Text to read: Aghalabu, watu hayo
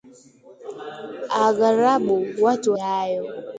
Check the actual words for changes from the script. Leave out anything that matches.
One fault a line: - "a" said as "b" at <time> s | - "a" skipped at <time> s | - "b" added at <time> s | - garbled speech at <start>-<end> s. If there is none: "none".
none